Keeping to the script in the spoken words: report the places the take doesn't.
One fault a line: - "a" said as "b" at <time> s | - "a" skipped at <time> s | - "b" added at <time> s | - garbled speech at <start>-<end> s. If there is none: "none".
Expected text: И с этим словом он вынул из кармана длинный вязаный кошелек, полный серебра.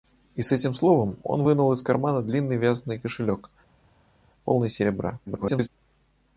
- garbled speech at 5.3-5.7 s